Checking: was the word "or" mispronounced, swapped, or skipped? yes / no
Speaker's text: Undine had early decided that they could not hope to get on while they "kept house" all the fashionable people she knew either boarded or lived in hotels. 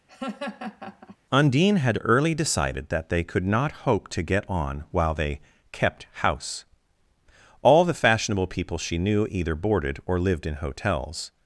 no